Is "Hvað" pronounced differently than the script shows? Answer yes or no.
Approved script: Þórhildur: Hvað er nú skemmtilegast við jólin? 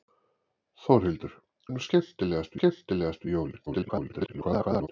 yes